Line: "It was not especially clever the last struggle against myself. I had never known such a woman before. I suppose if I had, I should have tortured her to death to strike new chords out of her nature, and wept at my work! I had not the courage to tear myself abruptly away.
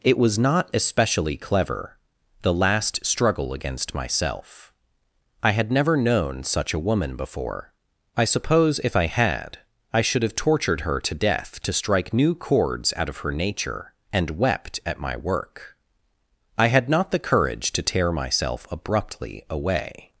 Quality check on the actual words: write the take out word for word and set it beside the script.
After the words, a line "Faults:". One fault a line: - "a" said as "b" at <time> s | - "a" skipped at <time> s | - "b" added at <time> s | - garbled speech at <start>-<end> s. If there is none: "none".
"It was not especially clever the last struggle against myself. I had never known such a woman before. I suppose if I had, I should have tortured her to death to strike new chords out of her nature, and wept at my work! I had not the courage to tear myself abruptly away.
Faults:
none